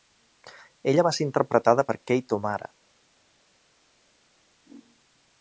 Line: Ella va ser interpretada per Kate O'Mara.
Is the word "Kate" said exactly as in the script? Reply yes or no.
yes